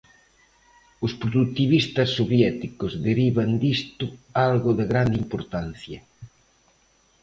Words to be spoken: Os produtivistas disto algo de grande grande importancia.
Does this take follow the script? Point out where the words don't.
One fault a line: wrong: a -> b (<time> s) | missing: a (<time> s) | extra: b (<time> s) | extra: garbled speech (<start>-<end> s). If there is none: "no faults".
extra: soviéticos derivan (2.2 s)
missing: grande (5.2 s)